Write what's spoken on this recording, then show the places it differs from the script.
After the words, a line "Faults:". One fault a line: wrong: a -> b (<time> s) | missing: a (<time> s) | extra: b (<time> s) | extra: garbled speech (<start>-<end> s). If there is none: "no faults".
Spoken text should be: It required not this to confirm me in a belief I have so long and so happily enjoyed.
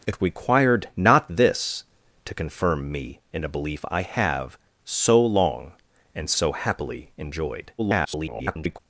It required not this to confirm me in a belief I have so long and so happily enjoyed. [garbled]
Faults:
extra: garbled speech (7.8-8.8 s)